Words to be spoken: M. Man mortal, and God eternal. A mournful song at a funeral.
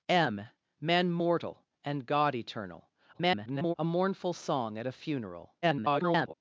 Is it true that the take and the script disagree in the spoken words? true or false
true